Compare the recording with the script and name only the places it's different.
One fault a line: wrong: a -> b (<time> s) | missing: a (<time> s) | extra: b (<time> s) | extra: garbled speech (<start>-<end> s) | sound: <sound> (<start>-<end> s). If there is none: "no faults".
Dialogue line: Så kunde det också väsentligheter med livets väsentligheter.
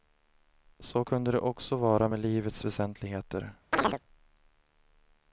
wrong: väsentligheter -> vara (1.8 s)
sound: chirp (3.7-4.0 s)